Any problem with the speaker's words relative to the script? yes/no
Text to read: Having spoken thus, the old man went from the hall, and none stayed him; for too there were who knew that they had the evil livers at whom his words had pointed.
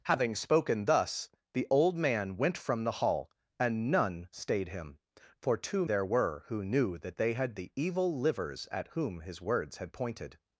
no